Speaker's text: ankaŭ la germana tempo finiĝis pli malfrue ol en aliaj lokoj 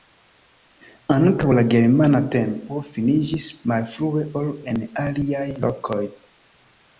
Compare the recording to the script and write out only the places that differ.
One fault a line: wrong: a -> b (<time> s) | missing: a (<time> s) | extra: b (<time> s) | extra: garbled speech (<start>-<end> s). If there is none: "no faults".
missing: pli (3.5 s)